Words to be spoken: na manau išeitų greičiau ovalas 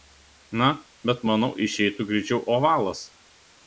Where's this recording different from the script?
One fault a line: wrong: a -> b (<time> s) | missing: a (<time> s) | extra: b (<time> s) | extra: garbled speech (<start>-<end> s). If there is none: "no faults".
extra: bet (1.1 s)